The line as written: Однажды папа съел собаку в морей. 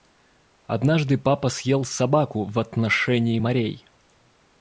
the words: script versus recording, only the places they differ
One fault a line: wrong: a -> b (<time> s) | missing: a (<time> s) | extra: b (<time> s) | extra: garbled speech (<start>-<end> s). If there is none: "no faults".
extra: отношении (2.6 s)